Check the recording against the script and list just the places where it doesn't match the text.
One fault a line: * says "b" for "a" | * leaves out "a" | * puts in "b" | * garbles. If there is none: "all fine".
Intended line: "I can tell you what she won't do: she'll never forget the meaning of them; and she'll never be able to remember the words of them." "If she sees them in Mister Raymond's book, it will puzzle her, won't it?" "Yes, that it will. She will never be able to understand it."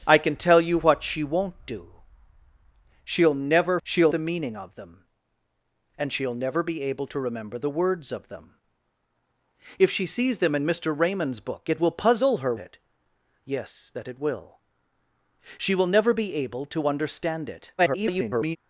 * says "she'll" for "forget"
* leaves out "won't"
* garbles